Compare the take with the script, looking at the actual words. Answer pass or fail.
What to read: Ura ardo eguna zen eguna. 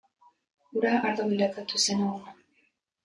fail